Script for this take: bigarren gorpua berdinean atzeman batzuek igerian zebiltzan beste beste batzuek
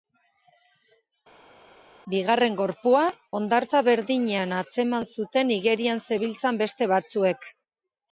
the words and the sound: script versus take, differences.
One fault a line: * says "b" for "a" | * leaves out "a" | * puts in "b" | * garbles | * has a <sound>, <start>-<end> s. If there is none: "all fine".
* puts in "hondartza"
* says "zuten" for "batzuek"
* leaves out "beste"